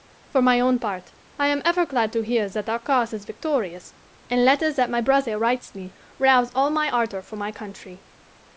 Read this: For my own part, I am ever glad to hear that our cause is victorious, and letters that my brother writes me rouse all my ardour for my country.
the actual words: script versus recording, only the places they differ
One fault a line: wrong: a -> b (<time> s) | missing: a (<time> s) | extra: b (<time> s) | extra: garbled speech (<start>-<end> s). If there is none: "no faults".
no faults